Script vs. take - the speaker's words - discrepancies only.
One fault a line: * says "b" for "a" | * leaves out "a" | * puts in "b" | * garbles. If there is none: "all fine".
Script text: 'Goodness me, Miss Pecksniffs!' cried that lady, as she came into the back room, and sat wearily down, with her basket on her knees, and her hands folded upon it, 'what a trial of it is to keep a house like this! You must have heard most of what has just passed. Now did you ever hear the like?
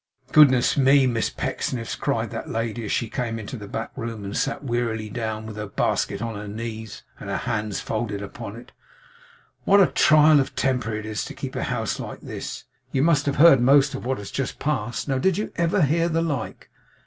* puts in "temper"